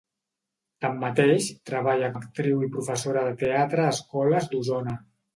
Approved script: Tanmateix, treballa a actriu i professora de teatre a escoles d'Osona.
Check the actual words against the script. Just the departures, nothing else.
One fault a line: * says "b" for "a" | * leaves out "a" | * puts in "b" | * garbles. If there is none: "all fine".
all fine